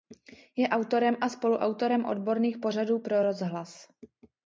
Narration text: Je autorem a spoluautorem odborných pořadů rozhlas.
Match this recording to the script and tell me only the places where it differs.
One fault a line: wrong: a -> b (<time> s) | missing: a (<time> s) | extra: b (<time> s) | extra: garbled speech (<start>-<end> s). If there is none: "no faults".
extra: pro (3.0 s)